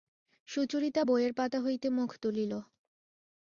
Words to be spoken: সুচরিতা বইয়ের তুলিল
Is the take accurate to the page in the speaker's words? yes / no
no